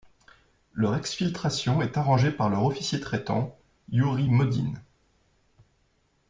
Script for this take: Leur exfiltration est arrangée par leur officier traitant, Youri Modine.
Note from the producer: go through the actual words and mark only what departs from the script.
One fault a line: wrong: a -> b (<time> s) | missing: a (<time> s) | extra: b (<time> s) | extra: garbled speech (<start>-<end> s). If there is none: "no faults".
no faults